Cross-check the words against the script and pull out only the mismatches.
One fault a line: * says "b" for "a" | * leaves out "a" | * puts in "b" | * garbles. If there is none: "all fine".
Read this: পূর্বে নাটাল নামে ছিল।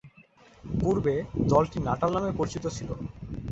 * puts in "দলটি"
* puts in "পরিচিত"